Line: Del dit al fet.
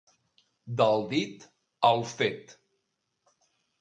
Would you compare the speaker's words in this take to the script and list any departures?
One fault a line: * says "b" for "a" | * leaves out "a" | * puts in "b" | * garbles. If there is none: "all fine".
all fine